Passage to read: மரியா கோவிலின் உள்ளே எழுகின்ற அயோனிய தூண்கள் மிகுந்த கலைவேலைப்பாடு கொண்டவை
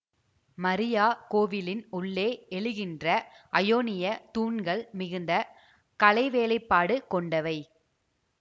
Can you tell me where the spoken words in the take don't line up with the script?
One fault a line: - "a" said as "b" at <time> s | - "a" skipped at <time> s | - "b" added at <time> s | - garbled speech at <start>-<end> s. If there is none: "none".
none